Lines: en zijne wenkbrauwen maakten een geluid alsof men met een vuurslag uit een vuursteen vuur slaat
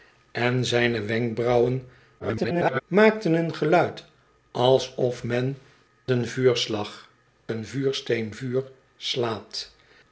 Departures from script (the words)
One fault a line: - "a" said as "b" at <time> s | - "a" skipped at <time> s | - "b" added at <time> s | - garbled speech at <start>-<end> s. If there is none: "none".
- garbled speech at 2.2-2.8 s
- "met" skipped at 5.6 s
- "uit" skipped at 7.1 s